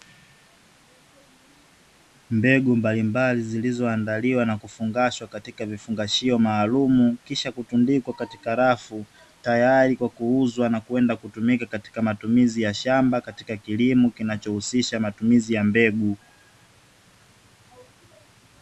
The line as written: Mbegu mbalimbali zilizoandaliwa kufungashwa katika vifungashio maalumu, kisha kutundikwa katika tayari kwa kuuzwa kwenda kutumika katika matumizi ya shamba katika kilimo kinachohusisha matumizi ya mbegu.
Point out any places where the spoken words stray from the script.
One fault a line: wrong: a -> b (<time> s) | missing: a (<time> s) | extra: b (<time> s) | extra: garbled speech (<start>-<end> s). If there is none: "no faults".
extra: na (4.5 s)
extra: rafu (8.5 s)
extra: na (10.7 s)